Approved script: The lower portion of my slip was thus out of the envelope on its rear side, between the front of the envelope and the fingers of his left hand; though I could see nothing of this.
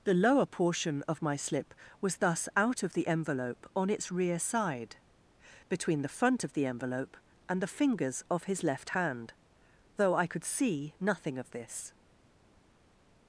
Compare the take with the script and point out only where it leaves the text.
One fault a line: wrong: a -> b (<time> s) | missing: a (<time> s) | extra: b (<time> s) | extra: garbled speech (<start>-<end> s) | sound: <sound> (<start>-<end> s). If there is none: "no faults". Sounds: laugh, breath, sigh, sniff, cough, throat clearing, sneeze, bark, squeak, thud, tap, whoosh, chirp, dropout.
no faults